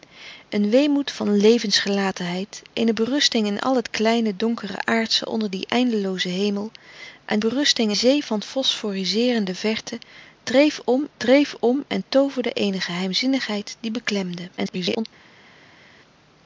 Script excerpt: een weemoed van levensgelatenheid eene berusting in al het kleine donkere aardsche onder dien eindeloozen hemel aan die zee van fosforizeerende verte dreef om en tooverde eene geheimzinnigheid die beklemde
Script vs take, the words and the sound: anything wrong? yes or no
yes